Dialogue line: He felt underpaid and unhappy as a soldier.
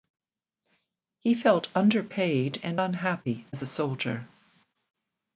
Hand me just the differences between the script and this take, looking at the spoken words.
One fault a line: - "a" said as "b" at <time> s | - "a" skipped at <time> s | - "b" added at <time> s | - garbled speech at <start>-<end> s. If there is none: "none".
none